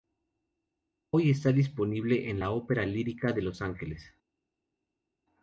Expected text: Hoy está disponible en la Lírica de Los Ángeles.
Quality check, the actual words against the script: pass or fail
fail